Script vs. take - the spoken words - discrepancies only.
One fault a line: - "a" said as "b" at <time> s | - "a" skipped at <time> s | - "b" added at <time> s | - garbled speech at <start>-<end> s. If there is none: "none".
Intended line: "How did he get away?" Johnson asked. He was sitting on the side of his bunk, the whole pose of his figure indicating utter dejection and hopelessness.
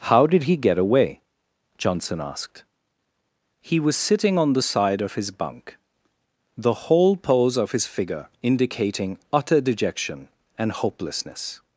none